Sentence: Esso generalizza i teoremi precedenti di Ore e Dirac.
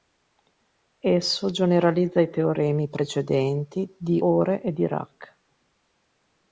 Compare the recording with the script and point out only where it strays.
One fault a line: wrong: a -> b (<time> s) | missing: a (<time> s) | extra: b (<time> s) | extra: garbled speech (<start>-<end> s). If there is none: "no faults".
no faults